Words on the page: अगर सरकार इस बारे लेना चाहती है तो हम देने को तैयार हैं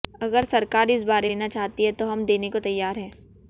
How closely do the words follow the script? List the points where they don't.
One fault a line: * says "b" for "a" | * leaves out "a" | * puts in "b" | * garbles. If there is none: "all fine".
all fine